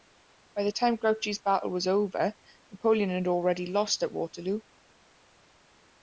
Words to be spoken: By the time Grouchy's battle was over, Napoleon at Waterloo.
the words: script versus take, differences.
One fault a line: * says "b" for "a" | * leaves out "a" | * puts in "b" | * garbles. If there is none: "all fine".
* puts in "had already lost"